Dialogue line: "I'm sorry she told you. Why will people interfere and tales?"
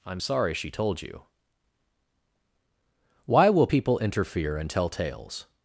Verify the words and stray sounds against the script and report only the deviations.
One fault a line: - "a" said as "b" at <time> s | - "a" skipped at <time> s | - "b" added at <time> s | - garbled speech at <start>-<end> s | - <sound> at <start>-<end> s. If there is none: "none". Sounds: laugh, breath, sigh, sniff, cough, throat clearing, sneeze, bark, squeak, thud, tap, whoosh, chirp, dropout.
- "tell" added at 4.7 s